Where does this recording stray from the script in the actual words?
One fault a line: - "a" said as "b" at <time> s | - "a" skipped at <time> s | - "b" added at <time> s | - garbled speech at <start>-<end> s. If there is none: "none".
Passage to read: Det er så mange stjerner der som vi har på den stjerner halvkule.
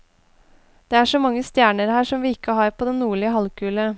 - "der" said as "her" at 1.9 s
- "ikke" added at 2.3 s
- "stjerner" said as "nordlige" at 3.0 s